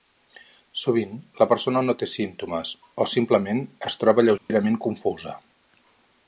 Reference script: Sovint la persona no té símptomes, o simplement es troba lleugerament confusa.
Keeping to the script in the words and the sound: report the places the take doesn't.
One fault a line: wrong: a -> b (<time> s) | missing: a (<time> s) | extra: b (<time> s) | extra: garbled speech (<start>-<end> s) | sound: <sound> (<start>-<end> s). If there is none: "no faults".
sound: dropout (4.4-4.5 s)